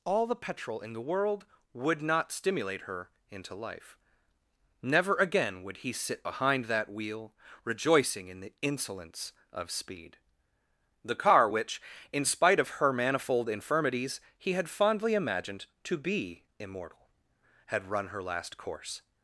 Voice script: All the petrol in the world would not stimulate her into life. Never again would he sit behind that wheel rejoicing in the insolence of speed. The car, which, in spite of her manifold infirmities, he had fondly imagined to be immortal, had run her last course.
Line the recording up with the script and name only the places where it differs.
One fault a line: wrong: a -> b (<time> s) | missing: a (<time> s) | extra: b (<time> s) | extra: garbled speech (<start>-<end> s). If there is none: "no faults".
no faults